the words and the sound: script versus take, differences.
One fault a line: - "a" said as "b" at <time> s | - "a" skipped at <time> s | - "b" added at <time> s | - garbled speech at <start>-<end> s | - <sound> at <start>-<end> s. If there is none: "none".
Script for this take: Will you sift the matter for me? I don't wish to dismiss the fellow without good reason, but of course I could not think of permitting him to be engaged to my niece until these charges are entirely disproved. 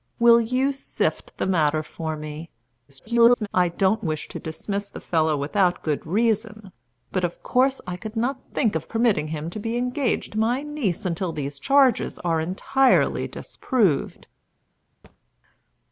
- garbled speech at 2.9-3.5 s
- thud at 15.0-15.2 s